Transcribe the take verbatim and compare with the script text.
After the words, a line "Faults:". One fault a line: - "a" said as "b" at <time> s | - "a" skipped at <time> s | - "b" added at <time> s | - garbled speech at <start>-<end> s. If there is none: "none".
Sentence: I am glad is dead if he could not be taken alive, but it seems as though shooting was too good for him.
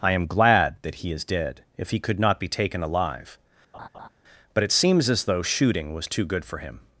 I am glad that he is dead if he could not be taken alive, but it seems as though shooting was too good for him.
Faults:
- "that he" added at 0.8 s